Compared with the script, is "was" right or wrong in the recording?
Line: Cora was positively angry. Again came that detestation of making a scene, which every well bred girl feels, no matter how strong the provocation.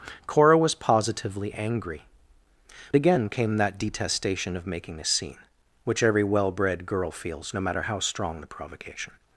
right